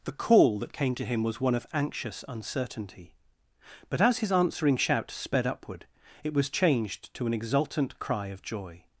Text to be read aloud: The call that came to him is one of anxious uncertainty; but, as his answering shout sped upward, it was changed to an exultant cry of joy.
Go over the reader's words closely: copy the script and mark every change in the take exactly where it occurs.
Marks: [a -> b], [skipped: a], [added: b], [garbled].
The call that came to him [is -> was] one of anxious uncertainty; but, as his answering shout sped upward, it was changed to an exultant cry of joy.